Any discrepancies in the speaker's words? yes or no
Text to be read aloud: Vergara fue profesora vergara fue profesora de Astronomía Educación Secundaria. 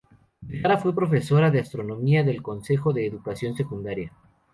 yes